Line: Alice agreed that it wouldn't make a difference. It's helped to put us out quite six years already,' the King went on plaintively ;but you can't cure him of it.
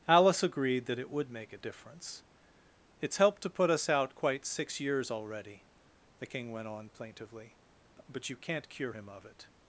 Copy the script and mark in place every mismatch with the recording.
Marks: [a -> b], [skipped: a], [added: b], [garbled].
Alice agreed that it [wouldn't -> would] make a difference. It's helped to put us out quite six years already,' the King went on plaintively ;but you can't cure him of it.